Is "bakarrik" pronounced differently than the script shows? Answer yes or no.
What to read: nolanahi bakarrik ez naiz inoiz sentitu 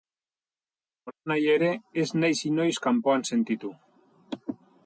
yes